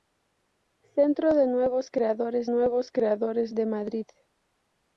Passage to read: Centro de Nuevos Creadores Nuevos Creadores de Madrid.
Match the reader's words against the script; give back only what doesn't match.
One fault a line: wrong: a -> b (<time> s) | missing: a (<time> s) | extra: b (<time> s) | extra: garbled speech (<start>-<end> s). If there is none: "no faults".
no faults